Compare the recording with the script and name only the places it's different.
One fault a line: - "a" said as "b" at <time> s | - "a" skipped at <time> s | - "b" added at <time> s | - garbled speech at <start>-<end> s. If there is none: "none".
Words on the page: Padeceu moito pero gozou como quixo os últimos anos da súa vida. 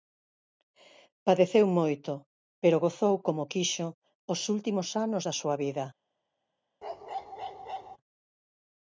none